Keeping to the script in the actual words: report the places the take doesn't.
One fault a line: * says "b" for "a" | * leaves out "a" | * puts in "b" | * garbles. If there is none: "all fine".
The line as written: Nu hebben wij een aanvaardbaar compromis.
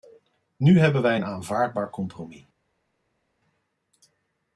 all fine